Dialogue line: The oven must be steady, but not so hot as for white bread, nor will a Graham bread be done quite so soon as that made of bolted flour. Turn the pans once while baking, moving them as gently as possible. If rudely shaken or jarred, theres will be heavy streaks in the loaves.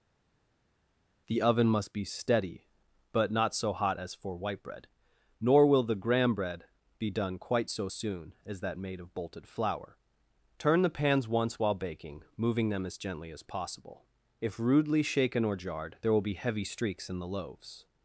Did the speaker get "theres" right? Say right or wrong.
wrong